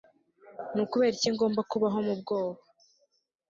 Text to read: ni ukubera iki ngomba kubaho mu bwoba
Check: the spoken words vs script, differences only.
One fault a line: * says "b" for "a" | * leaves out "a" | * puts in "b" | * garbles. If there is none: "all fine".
all fine